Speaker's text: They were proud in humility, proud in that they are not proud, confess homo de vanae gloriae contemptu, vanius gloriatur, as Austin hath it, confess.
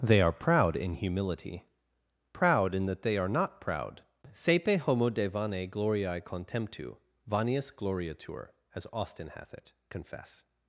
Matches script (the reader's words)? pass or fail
fail